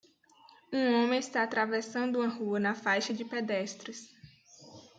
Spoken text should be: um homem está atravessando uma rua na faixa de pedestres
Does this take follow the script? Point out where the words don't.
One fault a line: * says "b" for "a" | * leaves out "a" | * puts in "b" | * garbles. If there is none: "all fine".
all fine